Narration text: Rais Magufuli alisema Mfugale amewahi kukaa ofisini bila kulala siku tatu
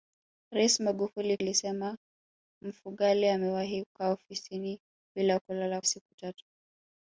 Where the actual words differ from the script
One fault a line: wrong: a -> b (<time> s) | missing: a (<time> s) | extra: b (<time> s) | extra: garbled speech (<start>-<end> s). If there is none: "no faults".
no faults